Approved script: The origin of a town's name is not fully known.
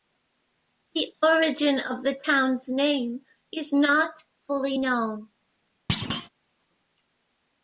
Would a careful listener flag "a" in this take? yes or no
yes